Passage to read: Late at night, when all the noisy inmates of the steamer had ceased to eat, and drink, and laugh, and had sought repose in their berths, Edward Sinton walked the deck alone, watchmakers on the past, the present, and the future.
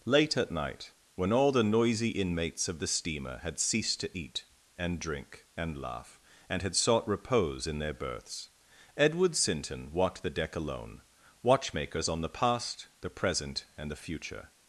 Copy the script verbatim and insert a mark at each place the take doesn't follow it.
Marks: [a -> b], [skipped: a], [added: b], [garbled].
Late at night, when all the noisy inmates of the steamer had ceased to eat, and drink, and laugh, and had sought repose in their berths, Edward Sinton walked the deck alone, watchmakers on the past, the present, and the future.